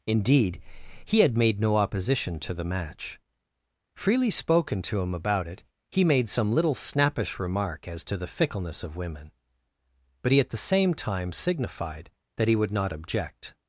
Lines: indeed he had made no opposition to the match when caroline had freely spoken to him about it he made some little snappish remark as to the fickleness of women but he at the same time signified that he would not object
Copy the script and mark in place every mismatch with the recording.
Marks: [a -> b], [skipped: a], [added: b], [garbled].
indeed he had made no opposition to the match [skipped: when caroline had] freely spoken to him about it he made some little snappish remark as to the fickleness of women but he at the same time signified that he would not object